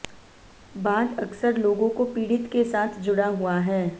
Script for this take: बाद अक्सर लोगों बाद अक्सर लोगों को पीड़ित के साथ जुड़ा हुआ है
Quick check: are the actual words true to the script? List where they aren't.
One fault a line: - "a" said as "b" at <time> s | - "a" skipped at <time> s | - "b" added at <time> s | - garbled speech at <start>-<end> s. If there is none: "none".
- "बाद अक्सर लोगों" skipped at 1.9 s